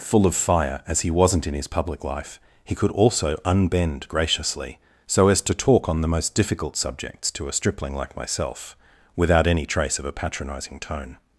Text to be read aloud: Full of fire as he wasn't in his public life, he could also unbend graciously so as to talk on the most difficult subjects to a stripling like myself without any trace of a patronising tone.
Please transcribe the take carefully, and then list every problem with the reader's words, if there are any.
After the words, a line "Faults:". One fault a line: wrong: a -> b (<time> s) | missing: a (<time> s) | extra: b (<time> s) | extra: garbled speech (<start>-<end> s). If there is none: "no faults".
Full of fire as he wasn't in his public life, he could also unbend graciously so as to talk on the most difficult subjects to a stripling like myself without any trace of a patronising tone.
Faults:
no faults